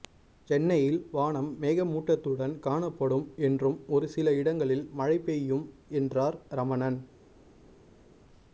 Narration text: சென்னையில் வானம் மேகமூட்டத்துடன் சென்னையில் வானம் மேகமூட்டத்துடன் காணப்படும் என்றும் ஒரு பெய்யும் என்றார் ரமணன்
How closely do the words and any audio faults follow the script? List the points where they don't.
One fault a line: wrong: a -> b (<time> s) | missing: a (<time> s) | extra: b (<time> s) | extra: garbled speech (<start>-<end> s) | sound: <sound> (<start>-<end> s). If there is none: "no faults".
wrong: சென்னையில் வானம் மேகமூட்டத்துடன் காணப்படும் என்றும் ஒரு -> காணப்படும் என்றும் ஒரு சில இடங்களில் மழை (2.6 s)